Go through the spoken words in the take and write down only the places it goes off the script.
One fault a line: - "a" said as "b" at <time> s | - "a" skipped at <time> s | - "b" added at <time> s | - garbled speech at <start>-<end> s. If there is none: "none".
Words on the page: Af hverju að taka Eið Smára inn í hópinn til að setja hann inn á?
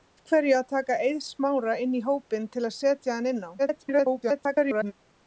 - garbled speech at 3.6-4.9 s